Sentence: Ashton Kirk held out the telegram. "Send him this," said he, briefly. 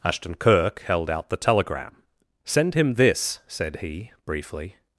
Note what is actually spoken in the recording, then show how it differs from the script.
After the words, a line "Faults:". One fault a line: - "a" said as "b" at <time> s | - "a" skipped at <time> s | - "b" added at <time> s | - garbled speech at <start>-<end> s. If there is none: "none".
Ashton Kirk held out the telegram. "Send him this," said he, briefly.
Faults:
none